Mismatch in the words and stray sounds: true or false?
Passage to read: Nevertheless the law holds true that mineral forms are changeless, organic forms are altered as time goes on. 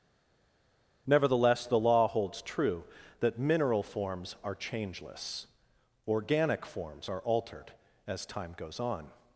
false